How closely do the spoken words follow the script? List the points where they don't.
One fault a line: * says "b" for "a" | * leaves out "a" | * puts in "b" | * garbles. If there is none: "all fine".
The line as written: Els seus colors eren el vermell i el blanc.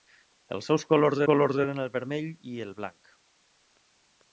* puts in "colors"